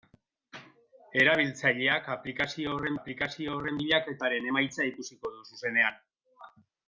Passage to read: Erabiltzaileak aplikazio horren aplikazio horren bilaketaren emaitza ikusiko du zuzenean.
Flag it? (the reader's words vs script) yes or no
no